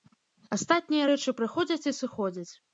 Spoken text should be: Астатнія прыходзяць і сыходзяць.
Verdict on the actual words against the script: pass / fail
fail